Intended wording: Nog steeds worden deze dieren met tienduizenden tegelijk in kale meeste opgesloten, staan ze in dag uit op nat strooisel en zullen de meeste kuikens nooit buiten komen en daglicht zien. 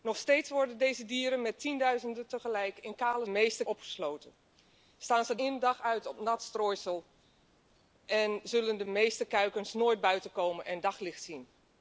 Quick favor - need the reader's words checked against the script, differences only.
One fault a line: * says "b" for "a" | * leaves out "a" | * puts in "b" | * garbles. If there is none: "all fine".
all fine